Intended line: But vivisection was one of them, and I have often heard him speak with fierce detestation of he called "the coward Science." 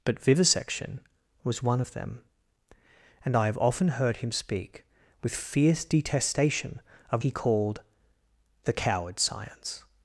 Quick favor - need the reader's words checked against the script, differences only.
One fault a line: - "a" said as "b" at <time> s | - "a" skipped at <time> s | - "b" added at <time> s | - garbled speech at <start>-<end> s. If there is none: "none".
none